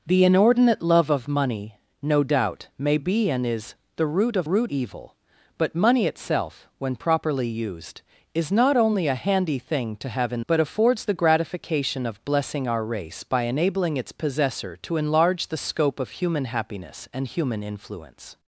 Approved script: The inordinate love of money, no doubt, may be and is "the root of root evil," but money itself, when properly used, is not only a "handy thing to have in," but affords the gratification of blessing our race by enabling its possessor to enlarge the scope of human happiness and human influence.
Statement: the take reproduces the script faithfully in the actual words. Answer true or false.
true